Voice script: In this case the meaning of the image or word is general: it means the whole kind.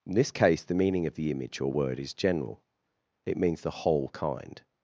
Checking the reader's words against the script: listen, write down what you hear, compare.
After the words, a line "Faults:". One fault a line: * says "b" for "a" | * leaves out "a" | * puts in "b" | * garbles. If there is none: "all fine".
In this case the meaning of the image or word is general: it means the whole kind.
Faults:
all fine